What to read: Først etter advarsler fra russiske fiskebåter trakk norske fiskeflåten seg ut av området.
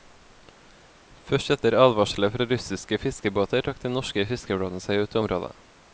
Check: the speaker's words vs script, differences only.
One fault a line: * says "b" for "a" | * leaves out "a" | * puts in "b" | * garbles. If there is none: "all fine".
* puts in "den"